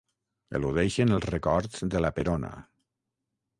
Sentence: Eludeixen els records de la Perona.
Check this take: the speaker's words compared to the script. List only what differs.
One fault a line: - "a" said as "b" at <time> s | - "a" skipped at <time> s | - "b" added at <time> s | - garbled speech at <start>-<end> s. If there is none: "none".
none